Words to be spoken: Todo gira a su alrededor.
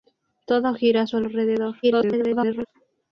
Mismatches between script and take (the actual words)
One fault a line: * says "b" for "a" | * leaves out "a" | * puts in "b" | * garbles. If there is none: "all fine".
* garbles